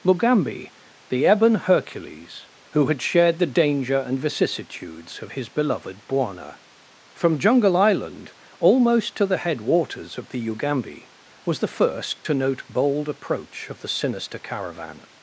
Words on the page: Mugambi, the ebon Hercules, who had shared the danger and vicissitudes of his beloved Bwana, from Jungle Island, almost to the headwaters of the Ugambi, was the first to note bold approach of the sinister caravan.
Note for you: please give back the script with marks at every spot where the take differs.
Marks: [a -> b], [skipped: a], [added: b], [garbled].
Mugambi, the ebon Hercules, who had shared the danger and vicissitudes of his beloved Bwana, from Jungle Island, almost to the headwaters of the Ugambi, was the first to note bold approach of the sinister caravan.